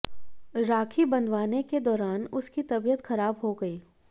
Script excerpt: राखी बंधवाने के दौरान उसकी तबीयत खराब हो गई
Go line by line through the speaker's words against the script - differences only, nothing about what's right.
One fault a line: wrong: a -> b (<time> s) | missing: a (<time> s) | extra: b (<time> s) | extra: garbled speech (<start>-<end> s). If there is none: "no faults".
no faults